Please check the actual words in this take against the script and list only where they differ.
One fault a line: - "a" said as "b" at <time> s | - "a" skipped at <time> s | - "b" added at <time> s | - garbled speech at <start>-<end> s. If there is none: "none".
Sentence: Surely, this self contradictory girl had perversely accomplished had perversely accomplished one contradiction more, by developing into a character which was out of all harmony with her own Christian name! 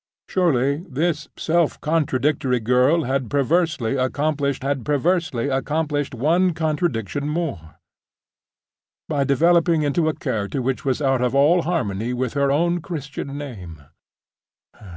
none